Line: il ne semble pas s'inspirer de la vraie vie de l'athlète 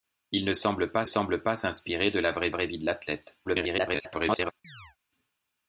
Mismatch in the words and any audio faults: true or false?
true